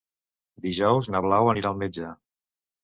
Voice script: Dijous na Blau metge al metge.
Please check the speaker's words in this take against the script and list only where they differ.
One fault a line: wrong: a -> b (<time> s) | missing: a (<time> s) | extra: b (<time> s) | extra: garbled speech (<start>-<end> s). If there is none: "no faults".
wrong: metge -> anirà (1.5 s)